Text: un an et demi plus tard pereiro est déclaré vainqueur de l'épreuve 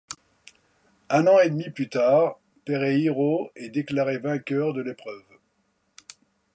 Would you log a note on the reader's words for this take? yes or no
no